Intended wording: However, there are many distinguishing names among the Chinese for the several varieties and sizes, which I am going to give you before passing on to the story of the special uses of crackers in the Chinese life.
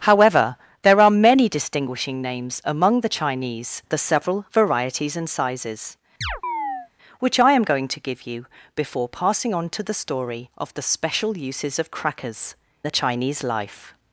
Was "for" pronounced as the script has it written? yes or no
no